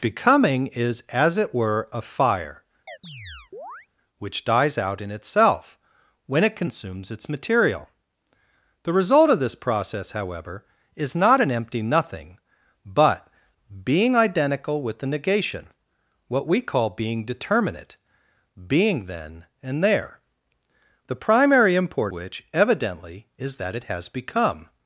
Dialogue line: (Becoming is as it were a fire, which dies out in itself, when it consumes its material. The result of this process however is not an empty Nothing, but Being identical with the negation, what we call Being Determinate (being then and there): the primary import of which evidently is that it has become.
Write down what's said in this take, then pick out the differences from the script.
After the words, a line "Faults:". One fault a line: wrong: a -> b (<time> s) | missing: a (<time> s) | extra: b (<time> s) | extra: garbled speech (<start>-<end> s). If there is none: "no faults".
(Becoming is as it were a fire, which dies out in itself, when it consumes its material. The result of this process however is not an empty Nothing, but Being identical with the negation, what we call Being Determinate (being then and there): the primary import which evidently is that it has become.
Faults:
missing: of (22.1 s)